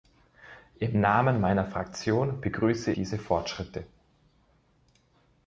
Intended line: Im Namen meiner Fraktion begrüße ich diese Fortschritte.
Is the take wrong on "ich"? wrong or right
wrong